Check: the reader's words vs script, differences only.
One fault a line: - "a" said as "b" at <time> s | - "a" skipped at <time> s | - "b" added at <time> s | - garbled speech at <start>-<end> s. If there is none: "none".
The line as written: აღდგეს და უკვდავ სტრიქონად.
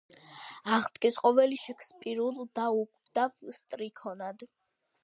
- "ყოველი შექსპირულ" added at 1.2 s